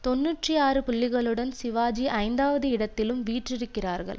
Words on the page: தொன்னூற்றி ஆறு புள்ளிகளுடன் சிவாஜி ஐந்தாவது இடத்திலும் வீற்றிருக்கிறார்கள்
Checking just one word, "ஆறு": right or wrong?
right